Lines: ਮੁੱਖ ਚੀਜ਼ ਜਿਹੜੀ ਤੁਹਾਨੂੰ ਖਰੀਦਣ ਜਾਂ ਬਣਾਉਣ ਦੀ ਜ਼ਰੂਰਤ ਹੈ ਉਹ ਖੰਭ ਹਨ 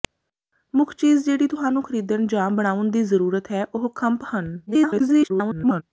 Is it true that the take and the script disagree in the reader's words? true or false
true